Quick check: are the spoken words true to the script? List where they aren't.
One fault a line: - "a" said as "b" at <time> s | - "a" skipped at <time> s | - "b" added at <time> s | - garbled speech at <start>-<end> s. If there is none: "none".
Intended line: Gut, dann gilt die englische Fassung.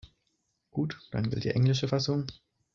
none